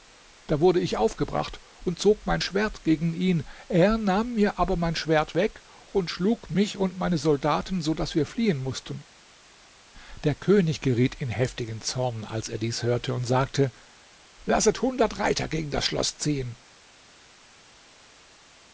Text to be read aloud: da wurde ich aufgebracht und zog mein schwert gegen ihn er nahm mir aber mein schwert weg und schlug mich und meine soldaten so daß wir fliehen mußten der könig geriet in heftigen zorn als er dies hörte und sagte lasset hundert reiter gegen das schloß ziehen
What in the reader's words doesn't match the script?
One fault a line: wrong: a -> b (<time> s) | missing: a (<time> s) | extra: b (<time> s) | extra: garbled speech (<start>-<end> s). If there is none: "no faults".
no faults